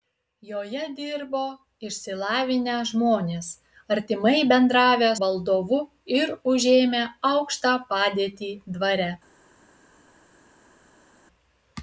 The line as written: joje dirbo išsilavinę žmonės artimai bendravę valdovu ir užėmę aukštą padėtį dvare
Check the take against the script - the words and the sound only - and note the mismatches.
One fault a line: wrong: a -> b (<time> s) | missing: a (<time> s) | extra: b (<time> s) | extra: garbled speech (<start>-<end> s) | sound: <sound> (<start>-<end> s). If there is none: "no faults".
no faults